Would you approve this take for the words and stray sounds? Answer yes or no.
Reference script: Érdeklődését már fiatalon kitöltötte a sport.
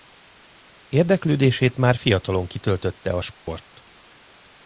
no